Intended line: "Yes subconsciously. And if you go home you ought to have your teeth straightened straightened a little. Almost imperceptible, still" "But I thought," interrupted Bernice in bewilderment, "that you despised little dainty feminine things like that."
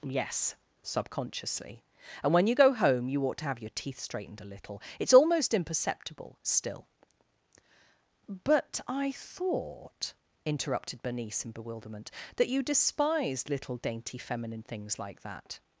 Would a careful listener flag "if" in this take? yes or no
yes